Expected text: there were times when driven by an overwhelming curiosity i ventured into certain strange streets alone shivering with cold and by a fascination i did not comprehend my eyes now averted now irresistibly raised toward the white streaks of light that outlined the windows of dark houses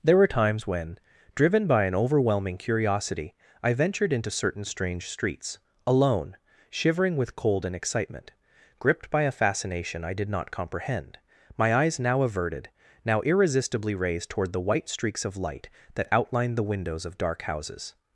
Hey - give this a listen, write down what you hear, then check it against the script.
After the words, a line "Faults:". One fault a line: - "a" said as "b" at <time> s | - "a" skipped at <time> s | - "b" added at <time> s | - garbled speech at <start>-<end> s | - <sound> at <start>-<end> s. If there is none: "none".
there were times when driven by an overwhelming curiosity i ventured into certain strange streets alone shivering with cold and excitement gripped by a fascination i did not comprehend my eyes now averted now irresistibly raised toward the white streaks of light that outlined the windows of dark houses
Faults:
- "excitement gripped" added at 7.8 s